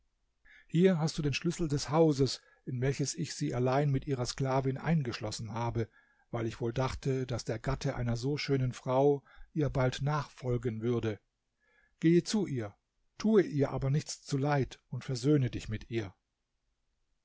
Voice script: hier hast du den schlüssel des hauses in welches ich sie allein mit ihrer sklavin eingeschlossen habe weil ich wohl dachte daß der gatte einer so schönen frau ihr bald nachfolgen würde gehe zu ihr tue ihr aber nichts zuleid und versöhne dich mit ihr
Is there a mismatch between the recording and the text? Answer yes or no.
no